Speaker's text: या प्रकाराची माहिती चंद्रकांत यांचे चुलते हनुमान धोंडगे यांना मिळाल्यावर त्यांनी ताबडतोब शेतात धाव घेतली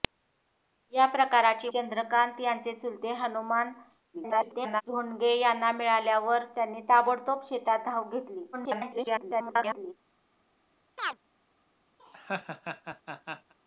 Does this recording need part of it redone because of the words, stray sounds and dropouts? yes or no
yes